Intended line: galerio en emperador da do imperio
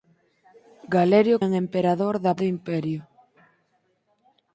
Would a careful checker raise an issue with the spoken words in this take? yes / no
no